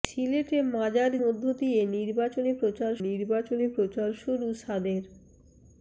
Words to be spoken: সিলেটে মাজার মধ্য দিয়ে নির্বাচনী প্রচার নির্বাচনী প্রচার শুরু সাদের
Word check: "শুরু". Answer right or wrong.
right